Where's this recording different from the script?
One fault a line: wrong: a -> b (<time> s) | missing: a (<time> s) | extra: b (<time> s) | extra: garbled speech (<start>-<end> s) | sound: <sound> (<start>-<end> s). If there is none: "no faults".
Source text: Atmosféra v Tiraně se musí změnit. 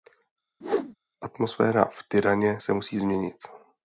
sound: whoosh (0.6-1.0 s)